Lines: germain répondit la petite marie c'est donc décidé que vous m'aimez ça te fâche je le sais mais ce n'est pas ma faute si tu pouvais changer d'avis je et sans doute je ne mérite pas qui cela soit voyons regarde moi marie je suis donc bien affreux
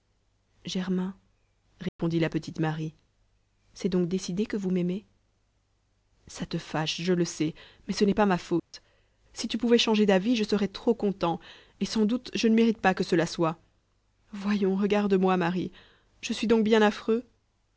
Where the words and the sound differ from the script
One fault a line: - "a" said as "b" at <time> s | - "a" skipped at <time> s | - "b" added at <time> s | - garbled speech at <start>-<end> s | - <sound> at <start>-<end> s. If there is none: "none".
- dropout at 1.9-2.0 s
- dropout at 8.6-8.7 s
- "serais trop content" added at 10.5 s
- "qui" said as "que" at 12.9 s